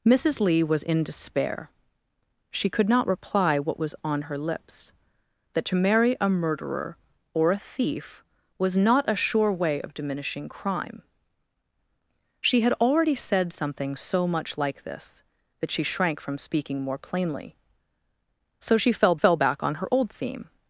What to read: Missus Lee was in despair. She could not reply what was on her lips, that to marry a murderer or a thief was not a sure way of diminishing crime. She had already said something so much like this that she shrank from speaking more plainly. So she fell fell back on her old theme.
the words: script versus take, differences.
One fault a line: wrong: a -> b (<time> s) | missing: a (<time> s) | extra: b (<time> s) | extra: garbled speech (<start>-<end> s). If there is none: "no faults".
no faults